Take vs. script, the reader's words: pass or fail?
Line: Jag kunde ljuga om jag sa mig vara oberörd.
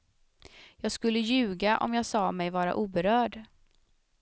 fail